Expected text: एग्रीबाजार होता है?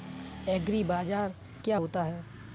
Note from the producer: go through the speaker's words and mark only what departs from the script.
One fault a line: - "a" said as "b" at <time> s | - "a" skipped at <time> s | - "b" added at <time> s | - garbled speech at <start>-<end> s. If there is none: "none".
- "क्या" added at 1.6 s